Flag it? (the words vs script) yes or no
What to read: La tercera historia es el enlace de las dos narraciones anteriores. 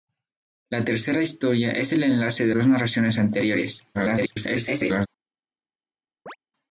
yes